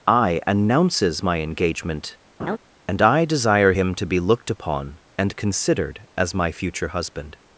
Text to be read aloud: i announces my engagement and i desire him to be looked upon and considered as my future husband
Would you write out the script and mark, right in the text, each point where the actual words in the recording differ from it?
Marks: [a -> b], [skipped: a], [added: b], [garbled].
i announces my engagement and i desire him to be looked upon and considered as my future husband